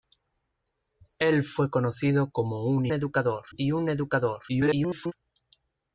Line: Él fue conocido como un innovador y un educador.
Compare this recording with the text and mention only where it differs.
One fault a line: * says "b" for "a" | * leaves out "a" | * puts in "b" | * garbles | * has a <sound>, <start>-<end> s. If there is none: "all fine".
* says "educador" for "innovador"
* garbles